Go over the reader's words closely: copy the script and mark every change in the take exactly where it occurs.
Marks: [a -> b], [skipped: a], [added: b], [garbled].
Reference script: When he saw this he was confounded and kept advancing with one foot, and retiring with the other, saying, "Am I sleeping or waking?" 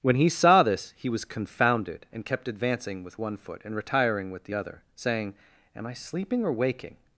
When he saw this he was confounded and kept advancing with one foot, and retiring with the other, saying, "Am I sleeping or waking?"